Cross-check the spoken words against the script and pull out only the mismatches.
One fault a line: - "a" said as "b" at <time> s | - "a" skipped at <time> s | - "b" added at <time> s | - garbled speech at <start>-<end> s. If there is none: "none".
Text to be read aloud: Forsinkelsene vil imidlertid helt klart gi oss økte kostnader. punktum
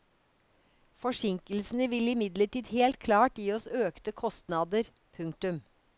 none